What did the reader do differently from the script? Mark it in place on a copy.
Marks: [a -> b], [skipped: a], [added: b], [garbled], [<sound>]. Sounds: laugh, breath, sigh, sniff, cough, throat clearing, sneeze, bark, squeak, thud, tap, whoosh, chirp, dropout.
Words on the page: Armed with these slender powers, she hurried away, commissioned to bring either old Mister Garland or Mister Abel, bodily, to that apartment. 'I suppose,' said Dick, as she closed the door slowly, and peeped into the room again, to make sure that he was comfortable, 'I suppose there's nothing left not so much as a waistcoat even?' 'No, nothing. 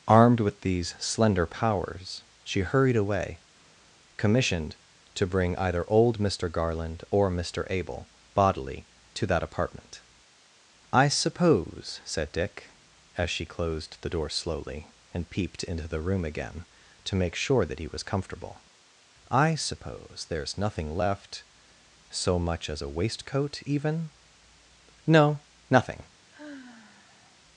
Armed with these slender powers, she hurried away, commissioned to bring either old Mister Garland or Mister Abel, bodily, to that apartment. 'I suppose,' said Dick, as she closed the door slowly, and peeped into the room again, to make sure that he was comfortable, 'I suppose there's nothing left [skipped: not] so much as a waistcoat even?' 'No, nothing. [sigh]